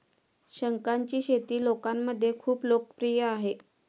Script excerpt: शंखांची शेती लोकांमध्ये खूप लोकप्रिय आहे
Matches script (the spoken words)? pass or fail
pass